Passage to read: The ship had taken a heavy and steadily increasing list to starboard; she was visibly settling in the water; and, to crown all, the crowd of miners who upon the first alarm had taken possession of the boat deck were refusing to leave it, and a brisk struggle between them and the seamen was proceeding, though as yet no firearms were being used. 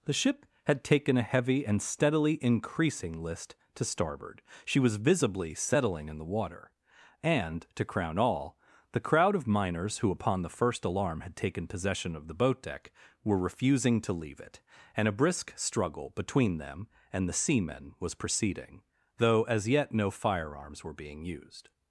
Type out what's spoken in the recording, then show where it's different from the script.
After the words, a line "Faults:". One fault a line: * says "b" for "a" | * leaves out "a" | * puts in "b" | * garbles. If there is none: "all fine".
The ship had taken a heavy and steadily increasing list to starboard; she was visibly settling in the water; and, to crown all, the crowd of miners who upon the first alarm had taken possession of the boat deck were refusing to leave it, and a brisk struggle between them and the seamen was proceeding, though as yet no firearms were being used.
Faults:
all fine